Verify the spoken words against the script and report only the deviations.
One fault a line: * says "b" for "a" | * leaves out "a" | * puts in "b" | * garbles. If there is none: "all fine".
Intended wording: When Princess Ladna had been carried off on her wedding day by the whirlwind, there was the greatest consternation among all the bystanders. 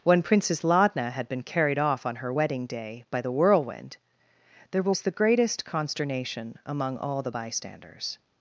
all fine